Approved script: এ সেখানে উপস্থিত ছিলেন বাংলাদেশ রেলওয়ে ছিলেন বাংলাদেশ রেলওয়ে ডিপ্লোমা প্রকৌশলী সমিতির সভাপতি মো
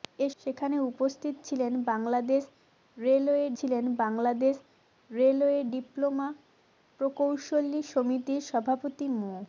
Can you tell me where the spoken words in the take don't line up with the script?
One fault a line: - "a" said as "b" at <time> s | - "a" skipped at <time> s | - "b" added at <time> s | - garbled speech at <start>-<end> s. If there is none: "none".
none